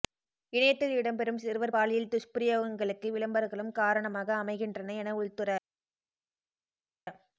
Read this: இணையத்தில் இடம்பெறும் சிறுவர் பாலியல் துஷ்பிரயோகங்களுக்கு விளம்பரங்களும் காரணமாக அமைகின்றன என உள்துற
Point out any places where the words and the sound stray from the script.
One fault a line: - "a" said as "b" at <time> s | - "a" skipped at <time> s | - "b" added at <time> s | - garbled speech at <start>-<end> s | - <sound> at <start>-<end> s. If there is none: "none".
none